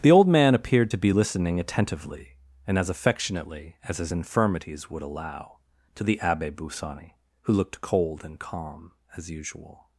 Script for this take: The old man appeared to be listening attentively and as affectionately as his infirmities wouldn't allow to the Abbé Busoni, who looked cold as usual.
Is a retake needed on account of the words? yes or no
yes